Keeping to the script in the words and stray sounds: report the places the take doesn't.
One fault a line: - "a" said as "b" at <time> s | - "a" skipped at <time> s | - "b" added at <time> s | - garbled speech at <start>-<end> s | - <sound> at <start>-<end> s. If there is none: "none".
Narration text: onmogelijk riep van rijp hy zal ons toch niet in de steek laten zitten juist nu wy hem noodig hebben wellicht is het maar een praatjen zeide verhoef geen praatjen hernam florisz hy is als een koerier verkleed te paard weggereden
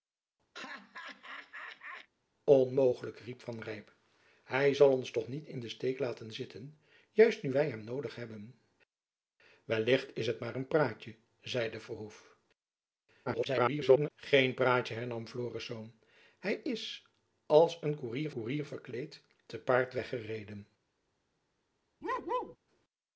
- laugh at 0.5-2.1 s
- garbled speech at 13.3-14.1 s
- "koerier" added at 18.3 s
- bark at 22.0-22.6 s